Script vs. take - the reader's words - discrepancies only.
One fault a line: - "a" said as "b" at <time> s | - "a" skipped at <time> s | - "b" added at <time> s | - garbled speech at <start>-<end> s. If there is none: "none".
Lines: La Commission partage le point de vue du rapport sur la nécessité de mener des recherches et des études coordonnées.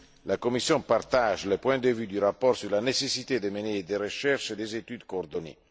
none